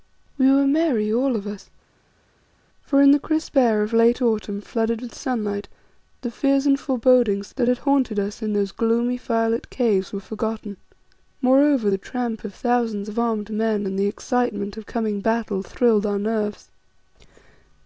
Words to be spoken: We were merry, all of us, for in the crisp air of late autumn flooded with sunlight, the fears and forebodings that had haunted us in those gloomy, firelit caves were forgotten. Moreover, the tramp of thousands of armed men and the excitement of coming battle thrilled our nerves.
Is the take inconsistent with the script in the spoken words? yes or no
no